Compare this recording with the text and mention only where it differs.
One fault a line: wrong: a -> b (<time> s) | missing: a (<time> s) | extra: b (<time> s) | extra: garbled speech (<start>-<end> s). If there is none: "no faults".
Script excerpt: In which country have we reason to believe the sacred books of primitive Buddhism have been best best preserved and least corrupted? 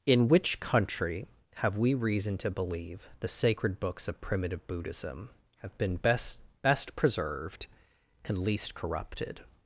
no faults